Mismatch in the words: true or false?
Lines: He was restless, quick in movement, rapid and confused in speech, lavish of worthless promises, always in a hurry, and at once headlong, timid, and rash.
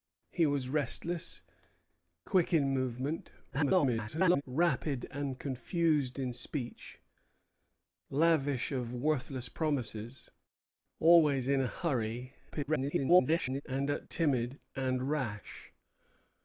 true